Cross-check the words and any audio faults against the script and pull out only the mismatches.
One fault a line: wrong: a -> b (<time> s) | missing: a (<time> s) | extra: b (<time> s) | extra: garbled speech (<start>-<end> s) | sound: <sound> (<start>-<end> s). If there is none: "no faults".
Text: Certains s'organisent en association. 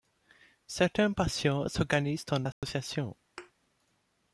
extra: patients (1.1 s)
sound: dropout (2.5-2.6 s)
sound: thud (3.4-3.5 s)